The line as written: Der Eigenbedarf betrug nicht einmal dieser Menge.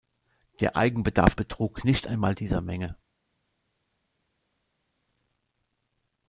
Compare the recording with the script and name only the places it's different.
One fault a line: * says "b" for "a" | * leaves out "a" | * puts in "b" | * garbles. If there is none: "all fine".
all fine